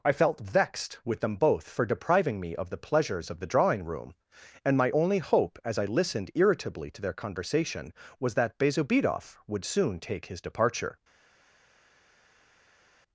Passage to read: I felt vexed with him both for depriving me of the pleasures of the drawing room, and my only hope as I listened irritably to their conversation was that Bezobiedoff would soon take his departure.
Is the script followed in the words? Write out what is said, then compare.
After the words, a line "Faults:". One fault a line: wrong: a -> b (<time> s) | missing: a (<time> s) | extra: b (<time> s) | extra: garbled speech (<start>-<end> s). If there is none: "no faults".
I felt vexed with them both for depriving me of the pleasures of the drawing room, and my only hope as I listened irritably to their conversation was that Bezobiedoff would soon take his departure.
Faults:
wrong: him -> them (1.2 s)